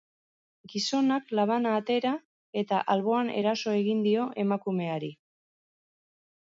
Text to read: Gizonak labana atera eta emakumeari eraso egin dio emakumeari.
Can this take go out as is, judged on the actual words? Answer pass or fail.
fail